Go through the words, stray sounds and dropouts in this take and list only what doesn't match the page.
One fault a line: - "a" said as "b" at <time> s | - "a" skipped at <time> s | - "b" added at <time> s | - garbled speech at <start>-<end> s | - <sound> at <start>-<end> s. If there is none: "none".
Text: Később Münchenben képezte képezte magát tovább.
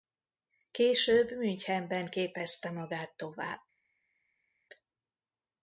- "képezte" skipped at 2.7 s